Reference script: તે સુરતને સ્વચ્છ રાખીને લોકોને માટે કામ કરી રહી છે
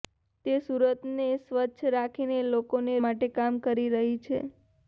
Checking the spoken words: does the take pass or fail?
pass